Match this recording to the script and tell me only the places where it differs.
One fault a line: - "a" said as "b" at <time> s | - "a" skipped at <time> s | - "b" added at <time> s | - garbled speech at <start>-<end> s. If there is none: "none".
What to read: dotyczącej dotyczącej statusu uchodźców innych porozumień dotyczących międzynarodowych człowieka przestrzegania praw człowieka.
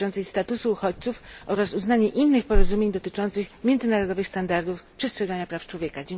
- "dotyczącej" skipped at 0.2 s
- "oraz uznanie" added at 1.4 s
- "człowieka" said as "standardów" at 4.3 s